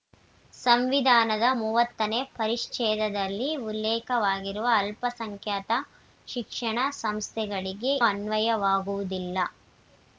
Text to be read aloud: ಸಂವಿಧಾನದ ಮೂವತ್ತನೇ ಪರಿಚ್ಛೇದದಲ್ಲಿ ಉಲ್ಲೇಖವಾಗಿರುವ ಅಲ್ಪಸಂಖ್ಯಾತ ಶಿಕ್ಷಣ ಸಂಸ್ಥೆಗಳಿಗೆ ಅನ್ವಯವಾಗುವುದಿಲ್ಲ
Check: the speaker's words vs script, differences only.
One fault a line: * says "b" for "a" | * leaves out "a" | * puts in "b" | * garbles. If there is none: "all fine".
all fine